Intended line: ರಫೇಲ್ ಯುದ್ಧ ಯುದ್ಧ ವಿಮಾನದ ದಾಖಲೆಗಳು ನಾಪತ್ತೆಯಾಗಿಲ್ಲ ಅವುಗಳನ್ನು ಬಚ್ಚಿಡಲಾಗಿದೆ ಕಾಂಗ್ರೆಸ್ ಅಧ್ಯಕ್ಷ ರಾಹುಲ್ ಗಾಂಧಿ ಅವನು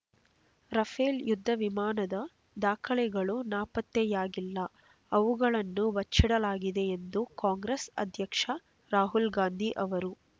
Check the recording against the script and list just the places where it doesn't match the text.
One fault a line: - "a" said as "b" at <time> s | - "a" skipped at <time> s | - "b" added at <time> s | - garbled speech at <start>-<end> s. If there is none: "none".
- "ಯುದ್ಧ" skipped at 1.5 s
- "ಎಂದು" added at 7.0 s
- "ಅವನು" said as "ಅವರು" at 9.8 s